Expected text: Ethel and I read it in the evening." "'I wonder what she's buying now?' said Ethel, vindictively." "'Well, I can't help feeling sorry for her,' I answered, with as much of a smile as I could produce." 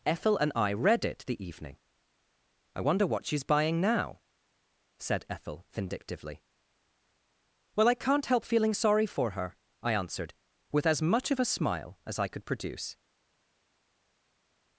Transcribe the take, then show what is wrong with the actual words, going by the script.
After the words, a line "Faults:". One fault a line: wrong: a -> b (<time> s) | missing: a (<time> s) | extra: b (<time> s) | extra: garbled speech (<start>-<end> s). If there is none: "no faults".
Ethel and I read it the evening." "'I wonder what she's buying now?' said Ethel, vindictively." "'Well, I can't help feeling sorry for her,' I answered, with as much of a smile as I could produce."
Faults:
missing: in (1.2 s)